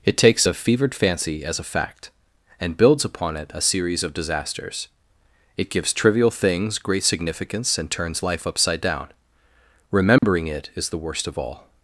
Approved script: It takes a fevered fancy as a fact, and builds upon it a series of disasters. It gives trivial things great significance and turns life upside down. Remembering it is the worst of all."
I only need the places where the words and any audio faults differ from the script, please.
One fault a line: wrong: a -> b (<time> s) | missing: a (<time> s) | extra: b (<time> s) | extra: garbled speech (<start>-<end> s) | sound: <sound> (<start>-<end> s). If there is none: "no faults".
sound: dropout (10.2-10.2 s)